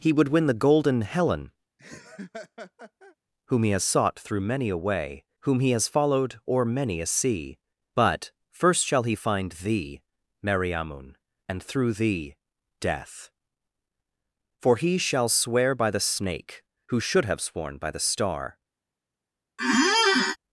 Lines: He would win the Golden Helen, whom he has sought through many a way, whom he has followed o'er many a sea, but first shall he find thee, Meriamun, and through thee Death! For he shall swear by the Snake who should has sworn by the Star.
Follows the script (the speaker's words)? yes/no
no